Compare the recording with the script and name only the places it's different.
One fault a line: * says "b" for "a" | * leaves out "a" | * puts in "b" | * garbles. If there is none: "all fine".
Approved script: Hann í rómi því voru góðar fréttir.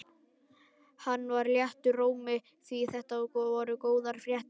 * puts in "var léttur"
* puts in "þetta"